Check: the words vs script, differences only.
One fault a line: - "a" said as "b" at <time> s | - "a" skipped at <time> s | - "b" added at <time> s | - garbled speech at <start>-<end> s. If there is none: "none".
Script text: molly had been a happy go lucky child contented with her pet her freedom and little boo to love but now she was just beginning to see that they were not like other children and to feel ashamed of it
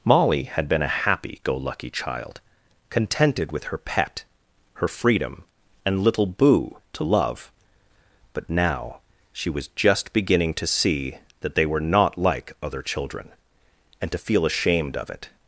none